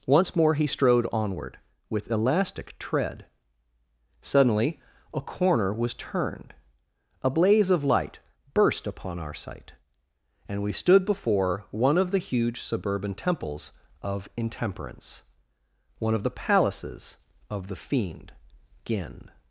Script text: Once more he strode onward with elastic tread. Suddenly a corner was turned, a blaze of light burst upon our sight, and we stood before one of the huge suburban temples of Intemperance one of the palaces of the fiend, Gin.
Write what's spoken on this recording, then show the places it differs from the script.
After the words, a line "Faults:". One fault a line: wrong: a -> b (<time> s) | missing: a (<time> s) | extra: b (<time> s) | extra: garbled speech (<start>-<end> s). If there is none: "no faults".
Once more he strode onward with elastic tread. Suddenly a corner was turned, a blaze of light burst upon our sight, and we stood before one of the huge suburban temples of Intemperance one of the palaces of the fiend, Gin.
Faults:
no faults